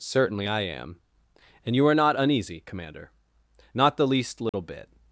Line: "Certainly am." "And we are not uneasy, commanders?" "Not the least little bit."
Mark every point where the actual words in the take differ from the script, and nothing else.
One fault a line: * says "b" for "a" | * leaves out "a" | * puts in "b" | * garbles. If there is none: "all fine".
* puts in "I"
* says "you" for "we"
* says "commander" for "commanders"